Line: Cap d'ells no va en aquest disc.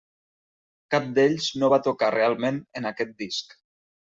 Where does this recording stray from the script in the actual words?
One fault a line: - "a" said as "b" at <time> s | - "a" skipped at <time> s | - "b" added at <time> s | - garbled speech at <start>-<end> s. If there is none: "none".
- "tocar realment" added at 1.9 s